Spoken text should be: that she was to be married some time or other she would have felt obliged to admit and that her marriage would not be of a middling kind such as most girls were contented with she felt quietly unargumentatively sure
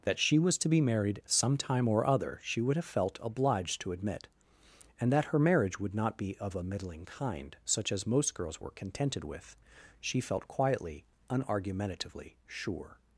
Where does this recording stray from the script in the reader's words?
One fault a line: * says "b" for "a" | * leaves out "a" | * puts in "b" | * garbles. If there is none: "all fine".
all fine